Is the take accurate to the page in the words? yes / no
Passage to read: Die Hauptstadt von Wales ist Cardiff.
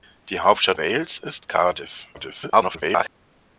no